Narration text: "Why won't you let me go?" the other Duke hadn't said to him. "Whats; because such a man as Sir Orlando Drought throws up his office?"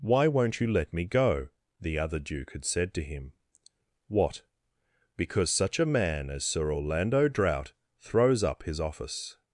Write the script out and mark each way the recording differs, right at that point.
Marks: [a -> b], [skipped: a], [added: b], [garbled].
"Why won't you let me go?" the other Duke [hadn't -> had] said to him. ["Whats; -> What] because such a man as Sir Orlando Drought throws up his office?"